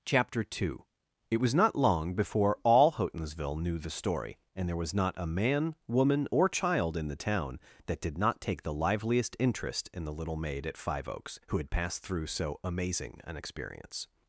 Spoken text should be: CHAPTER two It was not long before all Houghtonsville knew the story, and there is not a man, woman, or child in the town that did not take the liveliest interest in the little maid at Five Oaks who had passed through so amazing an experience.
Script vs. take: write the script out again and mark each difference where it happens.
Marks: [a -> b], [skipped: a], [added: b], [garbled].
CHAPTER two It was not long before all Houghtonsville knew the story, and there [is -> was] not a man, woman, or child in the town that did not take the liveliest interest in the little maid at Five Oaks who had passed through so amazing an experience.